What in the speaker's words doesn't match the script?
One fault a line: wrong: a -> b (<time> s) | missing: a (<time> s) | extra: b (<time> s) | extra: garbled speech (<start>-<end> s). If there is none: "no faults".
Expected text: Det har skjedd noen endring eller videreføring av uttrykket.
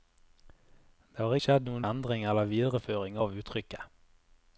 no faults